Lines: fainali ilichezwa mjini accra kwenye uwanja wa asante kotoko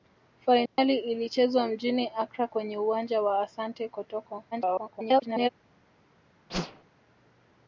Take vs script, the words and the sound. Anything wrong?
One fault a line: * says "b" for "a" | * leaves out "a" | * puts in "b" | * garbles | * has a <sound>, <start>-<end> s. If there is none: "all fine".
* has a dropout, 0.7-0.8 s
* garbles
* has a whoosh, 6.5-6.8 s